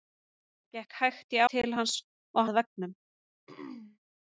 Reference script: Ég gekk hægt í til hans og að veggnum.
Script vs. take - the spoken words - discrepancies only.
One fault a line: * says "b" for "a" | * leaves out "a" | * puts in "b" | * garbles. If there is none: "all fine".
all fine